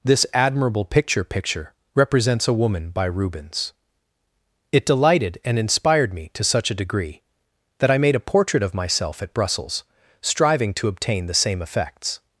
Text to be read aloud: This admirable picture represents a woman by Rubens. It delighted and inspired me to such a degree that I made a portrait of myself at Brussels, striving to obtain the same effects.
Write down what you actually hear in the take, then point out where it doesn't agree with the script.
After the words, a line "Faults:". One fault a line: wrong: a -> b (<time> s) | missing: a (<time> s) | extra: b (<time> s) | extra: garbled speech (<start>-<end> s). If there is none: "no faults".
This admirable picture picture represents a woman by Rubens. It delighted and inspired me to such a degree that I made a portrait of myself at Brussels, striving to obtain the same effects.
Faults:
extra: picture (1.2 s)